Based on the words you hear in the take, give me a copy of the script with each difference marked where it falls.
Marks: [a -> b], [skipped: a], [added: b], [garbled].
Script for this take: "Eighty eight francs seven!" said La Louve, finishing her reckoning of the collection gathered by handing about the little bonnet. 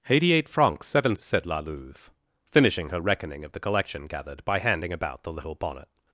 "Eighty eight francs seven!" said La Louve, finishing her reckoning of the collection gathered by handing about the little bonnet.